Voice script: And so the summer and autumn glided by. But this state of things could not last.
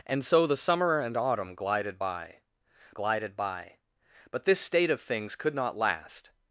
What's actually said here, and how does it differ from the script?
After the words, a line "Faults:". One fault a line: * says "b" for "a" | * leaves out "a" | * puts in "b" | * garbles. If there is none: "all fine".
And so the summer and autumn glided by glided by. But this state of things could not last.
Faults:
* puts in "glided by"